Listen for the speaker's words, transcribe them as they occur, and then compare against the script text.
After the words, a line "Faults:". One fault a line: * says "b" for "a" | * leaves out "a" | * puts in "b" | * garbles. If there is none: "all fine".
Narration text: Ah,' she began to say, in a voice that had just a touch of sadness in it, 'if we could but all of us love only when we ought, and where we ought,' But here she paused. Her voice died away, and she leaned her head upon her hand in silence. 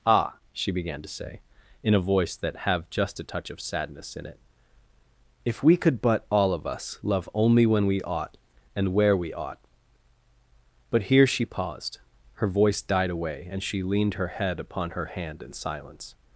Ah,' she began to say, in a voice that have just a touch of sadness in it, 'if we could but all of us love only when we ought, and where we ought,' But here she paused. Her voice died away, and she leaned her head upon her hand in silence.
Faults:
* says "have" for "had"